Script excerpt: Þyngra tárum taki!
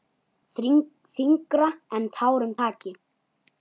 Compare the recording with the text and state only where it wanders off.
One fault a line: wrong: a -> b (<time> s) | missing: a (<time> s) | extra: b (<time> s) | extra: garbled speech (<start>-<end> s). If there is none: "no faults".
extra: en (2.0 s)